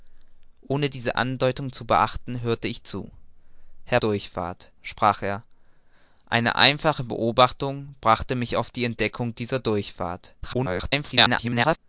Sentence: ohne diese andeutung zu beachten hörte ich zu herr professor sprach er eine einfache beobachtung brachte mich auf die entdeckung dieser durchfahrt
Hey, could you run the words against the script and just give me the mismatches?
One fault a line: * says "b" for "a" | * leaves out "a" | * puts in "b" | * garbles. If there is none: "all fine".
* says "durchfahrt" for "professor"
* garbles